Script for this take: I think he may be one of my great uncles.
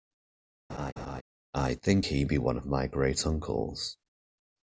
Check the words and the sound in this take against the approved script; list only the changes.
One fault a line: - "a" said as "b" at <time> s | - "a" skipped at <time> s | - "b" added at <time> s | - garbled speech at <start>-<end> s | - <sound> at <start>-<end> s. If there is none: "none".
- laugh at 0.7-1.2 s
- "may" skipped at 2.3 s